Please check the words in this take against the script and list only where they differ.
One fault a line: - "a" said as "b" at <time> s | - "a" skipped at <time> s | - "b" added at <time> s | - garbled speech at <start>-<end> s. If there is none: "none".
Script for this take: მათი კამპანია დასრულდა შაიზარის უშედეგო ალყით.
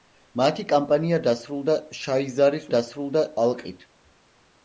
- "უშედეგო" said as "დასრულდა" at 2.7 s